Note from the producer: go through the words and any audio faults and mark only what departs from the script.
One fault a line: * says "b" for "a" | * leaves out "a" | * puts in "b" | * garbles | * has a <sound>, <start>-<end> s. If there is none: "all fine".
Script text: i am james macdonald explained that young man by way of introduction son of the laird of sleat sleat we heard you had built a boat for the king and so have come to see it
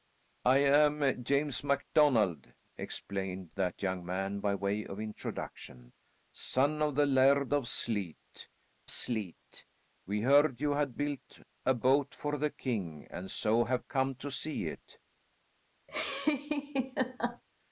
* has a laugh, 15.9-17.4 s